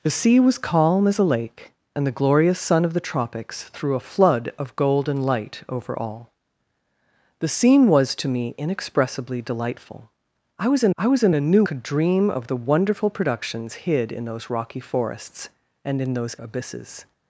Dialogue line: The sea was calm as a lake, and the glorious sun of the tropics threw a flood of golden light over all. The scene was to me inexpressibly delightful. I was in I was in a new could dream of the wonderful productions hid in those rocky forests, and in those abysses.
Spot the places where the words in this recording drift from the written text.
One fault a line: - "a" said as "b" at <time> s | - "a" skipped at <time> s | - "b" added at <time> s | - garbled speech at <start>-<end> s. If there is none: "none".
none